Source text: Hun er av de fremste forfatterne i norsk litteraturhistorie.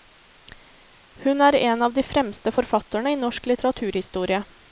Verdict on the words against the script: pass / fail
fail